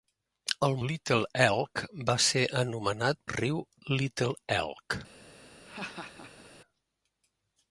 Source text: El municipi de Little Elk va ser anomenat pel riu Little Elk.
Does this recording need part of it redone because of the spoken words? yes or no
yes